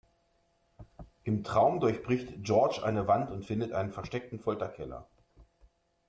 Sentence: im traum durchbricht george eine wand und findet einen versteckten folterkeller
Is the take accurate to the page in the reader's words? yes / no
yes